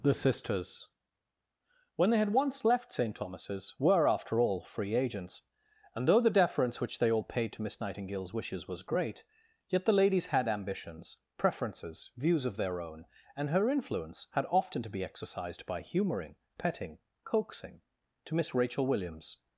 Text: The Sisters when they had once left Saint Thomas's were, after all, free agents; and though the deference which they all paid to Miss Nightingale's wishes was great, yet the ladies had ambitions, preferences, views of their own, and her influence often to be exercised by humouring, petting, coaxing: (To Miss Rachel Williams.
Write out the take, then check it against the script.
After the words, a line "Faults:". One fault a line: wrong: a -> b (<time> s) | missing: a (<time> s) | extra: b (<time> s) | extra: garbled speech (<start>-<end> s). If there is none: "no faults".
The Sisters when they had once left Saint Thomas's were, after all, free agents; and though the deference which they all paid to Miss Nightingale's wishes was great, yet the ladies had ambitions, preferences, views of their own, and her influence had often to be exercised by humouring, petting, coaxing: (To Miss Rachel Williams.
Faults:
extra: had (14.3 s)